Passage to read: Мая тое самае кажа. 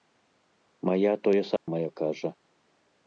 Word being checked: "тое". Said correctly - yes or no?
yes